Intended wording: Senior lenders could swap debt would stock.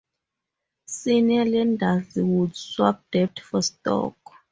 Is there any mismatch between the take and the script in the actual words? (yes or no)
yes